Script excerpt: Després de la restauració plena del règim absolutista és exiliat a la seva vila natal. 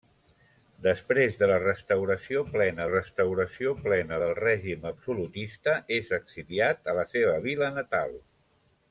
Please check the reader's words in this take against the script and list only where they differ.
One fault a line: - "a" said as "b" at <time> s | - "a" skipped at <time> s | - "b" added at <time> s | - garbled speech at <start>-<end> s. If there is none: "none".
- "restauració plena" added at 2.9 s